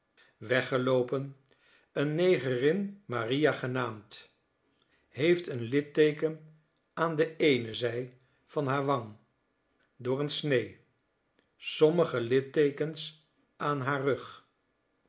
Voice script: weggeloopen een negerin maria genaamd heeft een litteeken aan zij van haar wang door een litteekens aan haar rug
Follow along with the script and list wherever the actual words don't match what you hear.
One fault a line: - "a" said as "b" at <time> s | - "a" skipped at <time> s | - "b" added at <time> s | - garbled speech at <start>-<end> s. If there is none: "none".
- "de eene" added at 7.2 s
- "snee sommige" added at 10.3 s